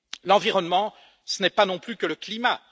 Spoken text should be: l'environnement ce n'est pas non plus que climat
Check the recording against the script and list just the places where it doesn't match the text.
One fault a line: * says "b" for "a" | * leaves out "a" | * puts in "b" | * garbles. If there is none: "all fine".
* puts in "le"